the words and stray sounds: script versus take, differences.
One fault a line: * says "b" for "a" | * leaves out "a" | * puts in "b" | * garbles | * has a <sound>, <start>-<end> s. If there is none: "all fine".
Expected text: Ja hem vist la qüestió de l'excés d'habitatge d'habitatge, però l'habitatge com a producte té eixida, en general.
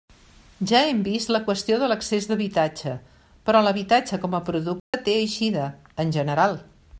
* leaves out "d'habitatge"
* has a dropout, 4.8-4.9 s